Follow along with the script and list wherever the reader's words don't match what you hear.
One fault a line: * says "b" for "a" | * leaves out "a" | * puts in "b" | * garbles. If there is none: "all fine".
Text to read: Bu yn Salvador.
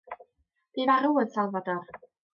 * puts in "farw"